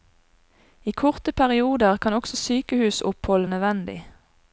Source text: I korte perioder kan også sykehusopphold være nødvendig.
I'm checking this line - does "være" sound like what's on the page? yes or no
no